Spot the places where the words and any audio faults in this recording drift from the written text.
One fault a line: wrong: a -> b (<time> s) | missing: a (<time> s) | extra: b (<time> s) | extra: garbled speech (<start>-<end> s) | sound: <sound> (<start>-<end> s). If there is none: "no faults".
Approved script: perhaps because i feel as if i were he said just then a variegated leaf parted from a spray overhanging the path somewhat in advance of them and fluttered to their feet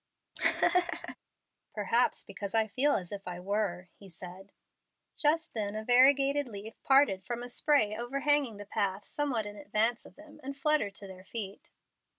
sound: laugh (0.3-1.2 s)